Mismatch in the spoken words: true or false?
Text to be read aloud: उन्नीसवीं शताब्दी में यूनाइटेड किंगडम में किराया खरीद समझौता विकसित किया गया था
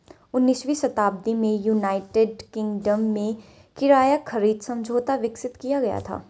false